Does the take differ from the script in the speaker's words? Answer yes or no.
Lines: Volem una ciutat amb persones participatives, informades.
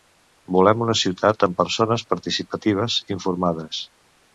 no